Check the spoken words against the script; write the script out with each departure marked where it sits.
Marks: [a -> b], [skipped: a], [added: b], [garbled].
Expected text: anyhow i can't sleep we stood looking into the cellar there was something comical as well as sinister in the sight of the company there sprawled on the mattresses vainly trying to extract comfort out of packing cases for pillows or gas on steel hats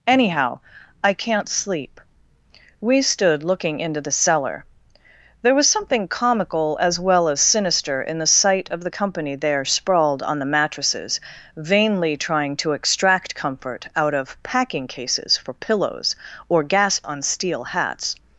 anyhow i can't sleep we stood looking into the cellar there was something comical as well as sinister in the sight of the company there sprawled on the mattresses vainly trying to extract comfort out of packing cases for pillows or gas on steel hats